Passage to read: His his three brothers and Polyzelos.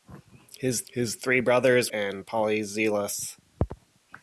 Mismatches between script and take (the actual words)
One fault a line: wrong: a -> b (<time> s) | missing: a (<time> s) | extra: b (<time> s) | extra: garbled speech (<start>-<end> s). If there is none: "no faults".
no faults